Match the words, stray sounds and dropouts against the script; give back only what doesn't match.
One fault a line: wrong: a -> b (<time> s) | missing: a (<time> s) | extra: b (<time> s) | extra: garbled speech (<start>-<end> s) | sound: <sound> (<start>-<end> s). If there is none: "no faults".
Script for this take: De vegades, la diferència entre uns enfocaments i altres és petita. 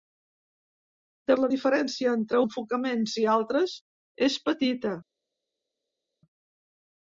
missing: vegades (1.4 s)
missing: uns (2.4 s)